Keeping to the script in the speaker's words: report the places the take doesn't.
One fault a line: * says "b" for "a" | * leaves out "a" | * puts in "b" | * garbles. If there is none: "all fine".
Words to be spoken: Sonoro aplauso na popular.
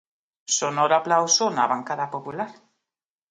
* puts in "bancada"